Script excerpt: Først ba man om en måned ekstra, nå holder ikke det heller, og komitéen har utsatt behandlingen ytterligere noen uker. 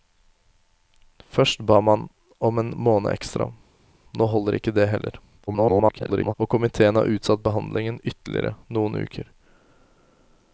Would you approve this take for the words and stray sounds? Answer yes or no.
no